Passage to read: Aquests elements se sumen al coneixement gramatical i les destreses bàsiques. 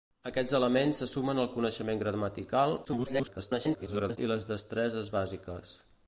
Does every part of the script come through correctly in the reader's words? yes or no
no